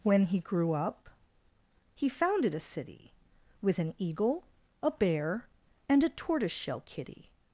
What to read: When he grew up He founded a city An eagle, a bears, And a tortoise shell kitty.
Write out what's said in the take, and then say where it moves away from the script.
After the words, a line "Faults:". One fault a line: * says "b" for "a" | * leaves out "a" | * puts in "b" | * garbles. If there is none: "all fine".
When he grew up He founded a city With an eagle, a bear, And a tortoise shell kitty.
Faults:
* puts in "With"
* says "bear" for "bears"